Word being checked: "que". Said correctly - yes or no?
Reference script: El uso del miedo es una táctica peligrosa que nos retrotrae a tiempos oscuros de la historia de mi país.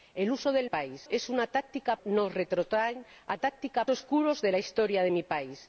no